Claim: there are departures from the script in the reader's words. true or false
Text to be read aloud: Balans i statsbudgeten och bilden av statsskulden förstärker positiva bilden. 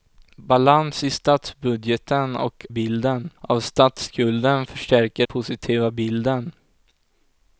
false